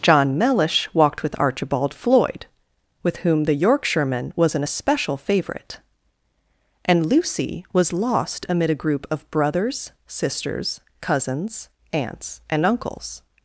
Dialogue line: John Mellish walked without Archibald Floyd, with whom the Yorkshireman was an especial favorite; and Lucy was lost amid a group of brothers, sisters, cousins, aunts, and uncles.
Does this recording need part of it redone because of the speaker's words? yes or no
yes